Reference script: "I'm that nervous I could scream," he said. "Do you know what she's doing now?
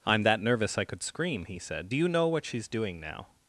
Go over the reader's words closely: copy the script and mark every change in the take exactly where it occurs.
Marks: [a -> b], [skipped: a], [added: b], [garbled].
"I'm that nervous I could scream," he said. "Do you know what she's doing now?